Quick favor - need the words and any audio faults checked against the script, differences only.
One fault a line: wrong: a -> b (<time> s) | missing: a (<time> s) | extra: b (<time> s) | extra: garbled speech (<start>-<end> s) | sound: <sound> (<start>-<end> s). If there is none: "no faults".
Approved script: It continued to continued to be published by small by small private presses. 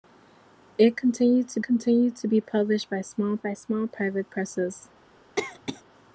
sound: cough (5.4-5.8 s)